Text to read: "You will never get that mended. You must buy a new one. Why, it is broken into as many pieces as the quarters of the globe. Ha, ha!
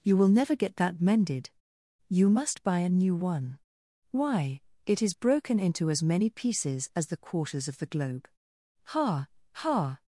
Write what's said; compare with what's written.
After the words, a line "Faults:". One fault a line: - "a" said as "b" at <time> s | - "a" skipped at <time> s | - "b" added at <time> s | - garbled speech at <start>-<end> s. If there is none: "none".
"You will never get that mended. You must buy a new one. Why, it is broken into as many pieces as the quarters of the globe. Ha, ha!
Faults:
none